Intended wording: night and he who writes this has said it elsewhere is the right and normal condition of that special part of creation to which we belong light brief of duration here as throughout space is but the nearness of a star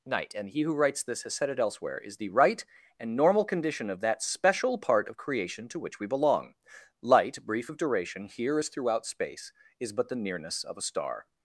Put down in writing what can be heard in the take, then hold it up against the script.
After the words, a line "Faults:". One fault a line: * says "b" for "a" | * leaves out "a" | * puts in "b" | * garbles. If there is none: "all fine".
night and he who writes this has said it elsewhere is the right and normal condition of that special part of creation to which we belong light brief of duration here as throughout space is but the nearness of a star
Faults:
all fine